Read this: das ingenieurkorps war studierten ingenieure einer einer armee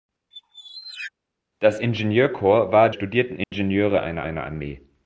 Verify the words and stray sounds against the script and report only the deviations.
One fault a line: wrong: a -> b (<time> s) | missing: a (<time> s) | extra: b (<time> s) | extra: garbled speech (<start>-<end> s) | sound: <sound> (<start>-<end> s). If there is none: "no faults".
sound: squeak (0.3-1.1 s)
sound: dropout (3.4-3.5 s)